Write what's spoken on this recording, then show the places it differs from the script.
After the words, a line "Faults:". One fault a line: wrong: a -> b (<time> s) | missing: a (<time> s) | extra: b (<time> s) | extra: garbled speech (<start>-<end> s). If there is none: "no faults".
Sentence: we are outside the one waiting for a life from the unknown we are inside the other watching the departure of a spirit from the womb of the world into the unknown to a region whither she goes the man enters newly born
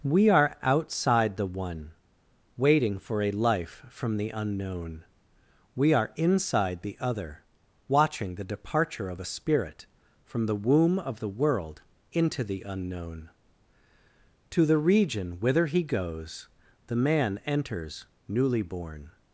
we are outside the one waiting for a life from the unknown we are inside the other watching the departure of a spirit from the womb of the world into the unknown to the region whither he goes the man enters newly born
Faults:
wrong: a -> the (14.6 s)
wrong: she -> he (15.7 s)